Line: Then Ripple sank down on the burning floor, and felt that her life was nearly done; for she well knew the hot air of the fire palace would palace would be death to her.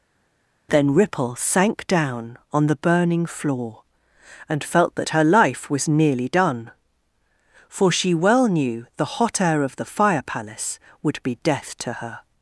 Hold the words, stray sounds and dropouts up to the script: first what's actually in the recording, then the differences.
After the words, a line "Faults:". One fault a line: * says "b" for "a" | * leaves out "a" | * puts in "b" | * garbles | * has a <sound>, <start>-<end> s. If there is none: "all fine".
Then Ripple sank down on the burning floor, and felt that her life was nearly done; for she well knew the hot air of the fire palace would be death to her.
Faults:
* leaves out "palace would"